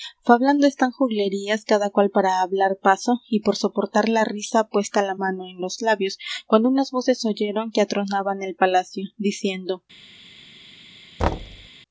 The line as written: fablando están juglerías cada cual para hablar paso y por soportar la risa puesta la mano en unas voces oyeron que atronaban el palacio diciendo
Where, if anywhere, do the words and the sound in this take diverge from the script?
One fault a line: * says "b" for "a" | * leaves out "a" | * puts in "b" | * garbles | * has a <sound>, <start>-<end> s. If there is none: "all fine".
* puts in "los labios cuando"
* has a thud, 11.2-11.7 s